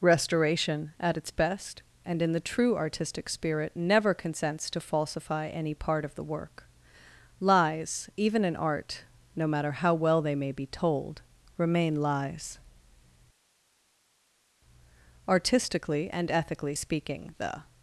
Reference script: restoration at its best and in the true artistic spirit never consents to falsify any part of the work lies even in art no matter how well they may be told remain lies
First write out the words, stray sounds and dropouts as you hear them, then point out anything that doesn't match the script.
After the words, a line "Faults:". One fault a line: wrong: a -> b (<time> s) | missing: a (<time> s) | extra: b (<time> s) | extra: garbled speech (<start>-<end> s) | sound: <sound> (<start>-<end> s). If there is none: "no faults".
restoration at its best and in the true artistic spirit never consents to falsify any part of the work lies even in art no matter how well they may be told remain lies artistically and ethically speaking the
Faults:
extra: artistically and ethically speaking the (15.3 s)